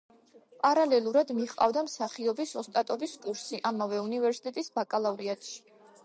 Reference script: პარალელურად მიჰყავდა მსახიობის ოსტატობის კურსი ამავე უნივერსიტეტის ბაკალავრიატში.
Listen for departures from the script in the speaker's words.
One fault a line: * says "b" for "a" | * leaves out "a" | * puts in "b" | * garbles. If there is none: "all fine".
all fine